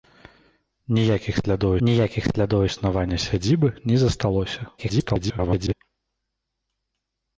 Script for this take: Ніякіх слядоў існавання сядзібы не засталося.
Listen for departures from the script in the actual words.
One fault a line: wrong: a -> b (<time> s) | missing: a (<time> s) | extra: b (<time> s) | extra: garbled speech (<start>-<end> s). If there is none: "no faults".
extra: ніякіх слядоў (1.9 s)
extra: garbled speech (4.8-5.7 s)